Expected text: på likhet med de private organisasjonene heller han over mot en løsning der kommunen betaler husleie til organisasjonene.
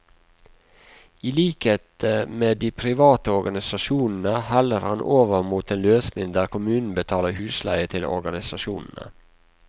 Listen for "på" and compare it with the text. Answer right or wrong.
wrong